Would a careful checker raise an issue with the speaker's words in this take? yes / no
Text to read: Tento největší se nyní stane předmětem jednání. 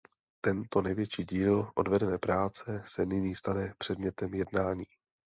yes